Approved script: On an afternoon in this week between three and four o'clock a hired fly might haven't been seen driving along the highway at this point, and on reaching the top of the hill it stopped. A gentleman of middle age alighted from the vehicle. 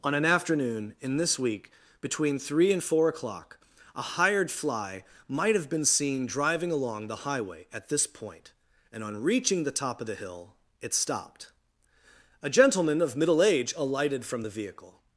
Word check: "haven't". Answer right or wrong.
wrong